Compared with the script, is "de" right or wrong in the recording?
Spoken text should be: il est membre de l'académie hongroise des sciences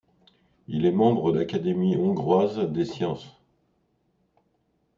wrong